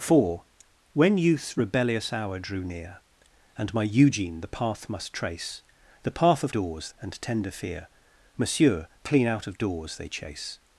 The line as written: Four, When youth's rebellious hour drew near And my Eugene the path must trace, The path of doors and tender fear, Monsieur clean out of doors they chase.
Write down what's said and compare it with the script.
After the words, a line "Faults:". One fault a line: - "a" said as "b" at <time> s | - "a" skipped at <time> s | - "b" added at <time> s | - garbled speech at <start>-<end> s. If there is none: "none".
Four, When youth's rebellious hour drew near And my Eugene the path must trace, The path of doors and tender fear, Monsieur clean out of doors they chase.
Faults:
none